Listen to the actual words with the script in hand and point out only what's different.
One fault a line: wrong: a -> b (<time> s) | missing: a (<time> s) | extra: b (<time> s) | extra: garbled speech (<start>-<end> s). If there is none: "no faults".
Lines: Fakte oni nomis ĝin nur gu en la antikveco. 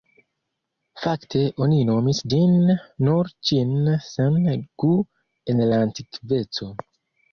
extra: ĉin sen (3.5 s)